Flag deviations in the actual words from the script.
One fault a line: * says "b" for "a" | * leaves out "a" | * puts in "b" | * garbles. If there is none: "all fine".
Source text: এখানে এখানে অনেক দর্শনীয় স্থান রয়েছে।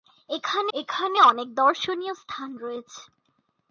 all fine